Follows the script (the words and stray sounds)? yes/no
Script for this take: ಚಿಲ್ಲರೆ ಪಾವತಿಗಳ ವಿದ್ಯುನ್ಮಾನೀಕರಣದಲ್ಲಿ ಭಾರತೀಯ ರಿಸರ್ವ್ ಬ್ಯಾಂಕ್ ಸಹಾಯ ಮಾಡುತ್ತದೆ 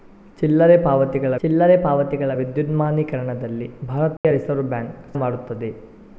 no